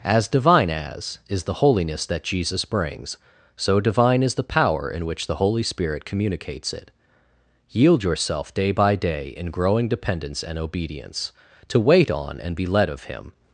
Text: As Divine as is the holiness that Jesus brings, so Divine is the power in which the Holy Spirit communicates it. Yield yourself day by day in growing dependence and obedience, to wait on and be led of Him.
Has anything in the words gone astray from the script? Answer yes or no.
no